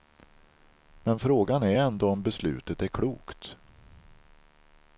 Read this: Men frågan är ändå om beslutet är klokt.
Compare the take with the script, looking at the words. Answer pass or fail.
pass